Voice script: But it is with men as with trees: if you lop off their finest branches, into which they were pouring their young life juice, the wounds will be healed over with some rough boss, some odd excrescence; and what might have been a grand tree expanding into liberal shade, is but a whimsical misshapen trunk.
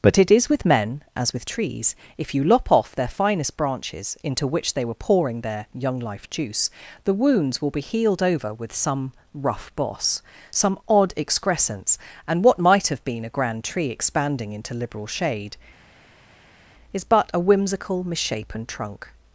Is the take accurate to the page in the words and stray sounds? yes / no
yes